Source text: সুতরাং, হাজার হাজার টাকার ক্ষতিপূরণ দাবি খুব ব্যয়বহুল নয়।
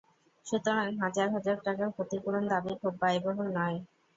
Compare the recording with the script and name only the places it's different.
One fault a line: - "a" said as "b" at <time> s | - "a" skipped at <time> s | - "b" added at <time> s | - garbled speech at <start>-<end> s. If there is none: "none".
none